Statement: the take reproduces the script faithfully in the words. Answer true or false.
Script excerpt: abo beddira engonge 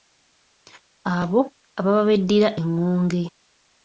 false